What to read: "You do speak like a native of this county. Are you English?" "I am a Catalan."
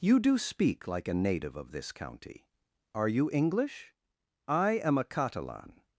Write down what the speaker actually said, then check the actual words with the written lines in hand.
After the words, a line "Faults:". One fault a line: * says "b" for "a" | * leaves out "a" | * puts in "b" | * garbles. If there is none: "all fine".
"You do speak like a native of this county. Are you English?" "I am a Catalan."
Faults:
all fine